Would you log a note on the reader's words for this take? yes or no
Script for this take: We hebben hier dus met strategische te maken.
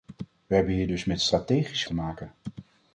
no